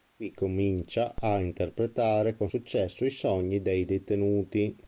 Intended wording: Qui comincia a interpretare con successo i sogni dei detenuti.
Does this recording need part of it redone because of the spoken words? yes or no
no